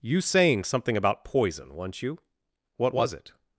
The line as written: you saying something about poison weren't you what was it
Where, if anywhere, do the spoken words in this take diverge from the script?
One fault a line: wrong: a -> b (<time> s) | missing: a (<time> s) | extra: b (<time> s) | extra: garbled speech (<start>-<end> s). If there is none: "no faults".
no faults